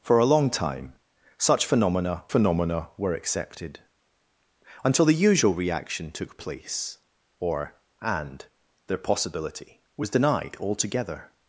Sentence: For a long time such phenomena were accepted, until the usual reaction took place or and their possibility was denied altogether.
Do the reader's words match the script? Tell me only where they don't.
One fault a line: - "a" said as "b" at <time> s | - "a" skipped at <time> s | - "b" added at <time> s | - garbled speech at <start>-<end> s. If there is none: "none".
- "phenomena" added at 2.3 s